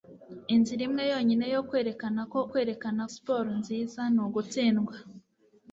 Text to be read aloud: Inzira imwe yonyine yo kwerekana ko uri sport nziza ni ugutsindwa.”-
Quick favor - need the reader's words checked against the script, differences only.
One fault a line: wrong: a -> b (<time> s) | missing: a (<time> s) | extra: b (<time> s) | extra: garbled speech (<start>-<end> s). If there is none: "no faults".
wrong: uri -> kwerekana (2.5 s)